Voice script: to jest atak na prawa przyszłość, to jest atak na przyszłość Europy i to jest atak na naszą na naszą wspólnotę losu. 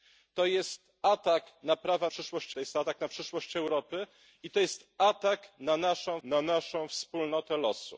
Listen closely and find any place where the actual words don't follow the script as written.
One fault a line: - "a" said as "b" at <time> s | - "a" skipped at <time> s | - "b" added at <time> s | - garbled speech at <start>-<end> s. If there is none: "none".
none